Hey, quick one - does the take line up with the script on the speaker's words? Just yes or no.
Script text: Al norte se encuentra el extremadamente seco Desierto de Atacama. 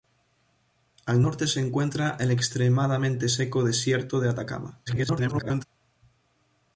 no